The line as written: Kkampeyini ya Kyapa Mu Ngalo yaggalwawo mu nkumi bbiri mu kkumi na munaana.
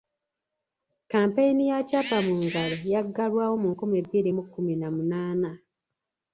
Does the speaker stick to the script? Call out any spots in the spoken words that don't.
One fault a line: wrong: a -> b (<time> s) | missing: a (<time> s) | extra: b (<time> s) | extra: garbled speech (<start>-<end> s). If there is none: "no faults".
no faults